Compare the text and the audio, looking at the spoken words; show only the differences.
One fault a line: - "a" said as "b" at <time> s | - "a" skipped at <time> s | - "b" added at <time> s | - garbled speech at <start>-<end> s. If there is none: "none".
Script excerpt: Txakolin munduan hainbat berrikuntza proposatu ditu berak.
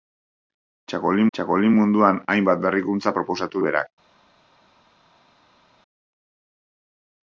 - "txakolin" added at 1.4 s
- "ditu" skipped at 3.6 s